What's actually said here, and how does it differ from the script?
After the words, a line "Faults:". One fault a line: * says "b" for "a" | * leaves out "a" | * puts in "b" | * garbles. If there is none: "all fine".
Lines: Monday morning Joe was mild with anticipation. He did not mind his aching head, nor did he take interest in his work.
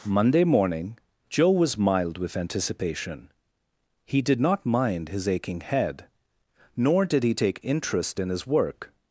Monday morning Joe was mild with anticipation. He did not mind his aching head, nor did he take interest in his work.
Faults:
all fine